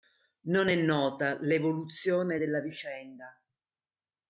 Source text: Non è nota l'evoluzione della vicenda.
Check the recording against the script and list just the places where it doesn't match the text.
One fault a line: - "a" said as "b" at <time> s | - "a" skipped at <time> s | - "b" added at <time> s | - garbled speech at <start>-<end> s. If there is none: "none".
none